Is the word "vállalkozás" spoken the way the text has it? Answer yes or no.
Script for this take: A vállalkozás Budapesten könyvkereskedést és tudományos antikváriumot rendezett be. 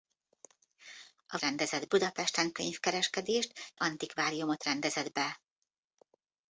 no